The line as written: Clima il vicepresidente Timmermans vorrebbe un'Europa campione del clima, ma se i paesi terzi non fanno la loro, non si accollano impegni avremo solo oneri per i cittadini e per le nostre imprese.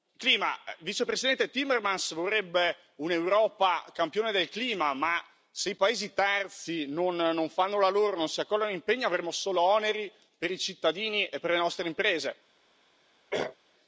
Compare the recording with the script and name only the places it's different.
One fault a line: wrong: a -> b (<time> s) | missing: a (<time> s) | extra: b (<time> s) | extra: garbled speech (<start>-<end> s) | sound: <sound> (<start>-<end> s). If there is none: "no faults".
sound: throat clearing (13.3-13.6 s)